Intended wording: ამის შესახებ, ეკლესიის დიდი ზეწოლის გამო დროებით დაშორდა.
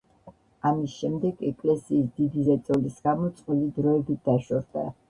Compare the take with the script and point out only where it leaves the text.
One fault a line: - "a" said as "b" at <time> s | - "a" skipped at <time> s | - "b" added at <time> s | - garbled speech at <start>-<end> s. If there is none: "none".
- "შესახებ" said as "შემდეგ" at 1.0 s
- "წყვილი" added at 3.4 s